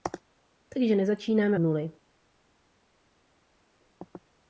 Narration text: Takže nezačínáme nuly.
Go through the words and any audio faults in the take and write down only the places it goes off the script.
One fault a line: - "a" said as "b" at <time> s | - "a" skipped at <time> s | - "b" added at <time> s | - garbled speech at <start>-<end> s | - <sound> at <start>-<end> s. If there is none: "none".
none